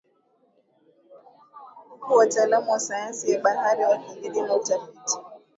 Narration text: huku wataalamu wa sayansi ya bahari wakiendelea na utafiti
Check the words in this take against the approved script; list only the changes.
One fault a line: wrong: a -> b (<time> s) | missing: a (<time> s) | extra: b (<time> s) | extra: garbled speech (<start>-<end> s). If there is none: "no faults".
no faults